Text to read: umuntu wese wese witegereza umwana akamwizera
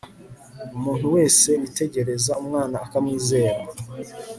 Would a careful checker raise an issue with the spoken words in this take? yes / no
yes